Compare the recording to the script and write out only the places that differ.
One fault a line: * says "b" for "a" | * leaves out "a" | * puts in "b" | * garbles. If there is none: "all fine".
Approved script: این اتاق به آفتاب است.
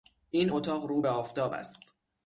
* puts in "رو"